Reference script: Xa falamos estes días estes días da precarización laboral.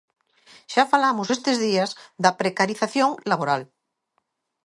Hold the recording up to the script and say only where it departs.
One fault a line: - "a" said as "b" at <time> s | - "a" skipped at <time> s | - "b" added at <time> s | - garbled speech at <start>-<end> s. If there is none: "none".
- "estes días" skipped at 1.9 s